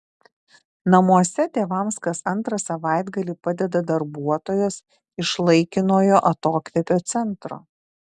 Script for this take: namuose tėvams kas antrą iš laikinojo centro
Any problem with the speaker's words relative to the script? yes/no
yes